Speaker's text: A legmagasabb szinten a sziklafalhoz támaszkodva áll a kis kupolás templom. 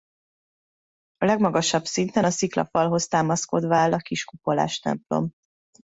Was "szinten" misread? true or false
false